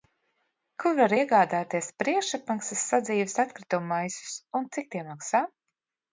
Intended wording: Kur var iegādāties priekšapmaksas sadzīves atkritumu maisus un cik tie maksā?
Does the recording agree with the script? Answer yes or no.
yes